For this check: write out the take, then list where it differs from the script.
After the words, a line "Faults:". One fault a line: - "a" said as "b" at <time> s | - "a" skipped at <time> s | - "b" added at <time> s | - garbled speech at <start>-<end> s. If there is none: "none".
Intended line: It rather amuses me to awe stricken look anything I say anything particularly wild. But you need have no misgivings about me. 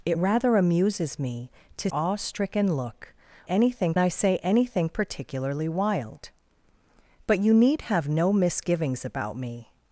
It rather amuses me to awe stricken look anything I say anything particularly wild. But you need have no misgivings about me.
Faults:
none